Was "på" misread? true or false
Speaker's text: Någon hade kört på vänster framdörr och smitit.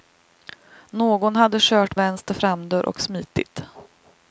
true